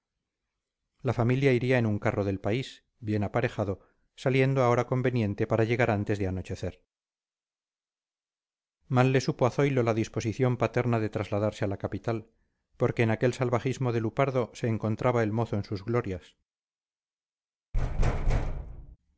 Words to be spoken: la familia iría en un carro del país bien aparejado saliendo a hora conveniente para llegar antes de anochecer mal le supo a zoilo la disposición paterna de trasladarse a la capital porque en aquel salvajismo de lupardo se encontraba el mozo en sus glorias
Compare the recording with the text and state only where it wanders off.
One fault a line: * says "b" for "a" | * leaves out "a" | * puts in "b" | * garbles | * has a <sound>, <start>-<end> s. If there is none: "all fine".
* has a thud, 17.7-19.0 s